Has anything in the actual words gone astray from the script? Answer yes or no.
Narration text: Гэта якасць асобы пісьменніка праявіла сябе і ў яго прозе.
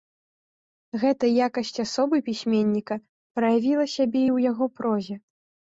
no